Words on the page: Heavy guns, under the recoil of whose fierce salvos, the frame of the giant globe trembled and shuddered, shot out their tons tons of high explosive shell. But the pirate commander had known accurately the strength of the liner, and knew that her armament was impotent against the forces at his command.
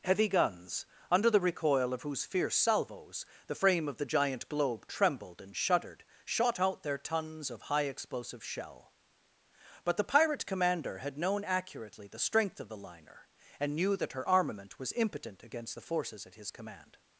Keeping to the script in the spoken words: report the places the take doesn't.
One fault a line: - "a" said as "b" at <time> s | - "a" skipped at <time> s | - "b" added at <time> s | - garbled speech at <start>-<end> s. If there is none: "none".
- "tons" skipped at 7.5 s